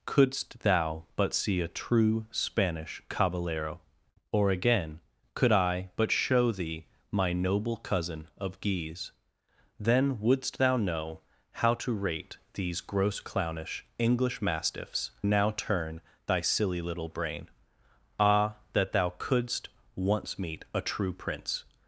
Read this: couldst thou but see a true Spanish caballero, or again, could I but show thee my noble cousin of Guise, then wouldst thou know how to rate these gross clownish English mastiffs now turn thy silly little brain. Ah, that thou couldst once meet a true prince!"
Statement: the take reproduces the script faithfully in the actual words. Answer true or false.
true